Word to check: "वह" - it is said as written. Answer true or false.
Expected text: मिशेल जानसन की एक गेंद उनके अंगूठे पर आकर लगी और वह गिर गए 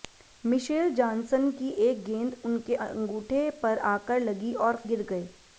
false